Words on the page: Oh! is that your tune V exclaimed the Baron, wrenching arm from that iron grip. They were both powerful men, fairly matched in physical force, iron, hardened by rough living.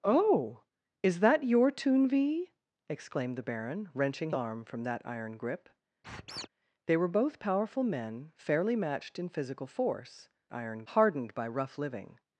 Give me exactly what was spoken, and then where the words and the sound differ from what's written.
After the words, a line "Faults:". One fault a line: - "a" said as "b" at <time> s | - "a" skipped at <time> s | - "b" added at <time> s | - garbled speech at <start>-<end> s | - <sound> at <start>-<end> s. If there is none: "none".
Oh! is that your tune V exclaimed the Baron, wrenching arm from that iron grip. They were both powerful men, fairly matched in physical force, iron, hardened by rough living.
Faults:
- squeak at 6.0-6.5 s